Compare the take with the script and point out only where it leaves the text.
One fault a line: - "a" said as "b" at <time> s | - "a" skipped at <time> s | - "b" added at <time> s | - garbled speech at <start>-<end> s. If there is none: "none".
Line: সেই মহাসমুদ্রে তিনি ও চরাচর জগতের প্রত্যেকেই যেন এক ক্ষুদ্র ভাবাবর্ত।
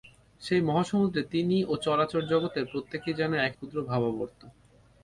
none